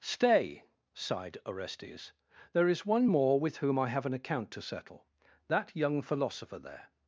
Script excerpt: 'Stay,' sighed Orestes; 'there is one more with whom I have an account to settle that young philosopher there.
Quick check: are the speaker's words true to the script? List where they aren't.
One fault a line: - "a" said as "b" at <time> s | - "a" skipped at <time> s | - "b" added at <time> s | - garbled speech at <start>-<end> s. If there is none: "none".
none